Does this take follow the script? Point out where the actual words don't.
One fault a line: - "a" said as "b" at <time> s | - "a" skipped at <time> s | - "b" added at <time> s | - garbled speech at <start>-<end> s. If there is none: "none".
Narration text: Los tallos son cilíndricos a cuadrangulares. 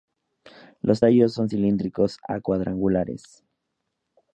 none